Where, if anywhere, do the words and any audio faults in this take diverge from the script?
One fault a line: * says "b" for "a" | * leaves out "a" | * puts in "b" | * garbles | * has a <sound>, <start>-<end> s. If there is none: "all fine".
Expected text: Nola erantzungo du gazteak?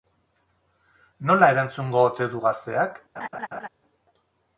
* puts in "ote"
* has a laugh, 3.2-3.7 s